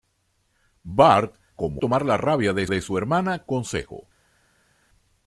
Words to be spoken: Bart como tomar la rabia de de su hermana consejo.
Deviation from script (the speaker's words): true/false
false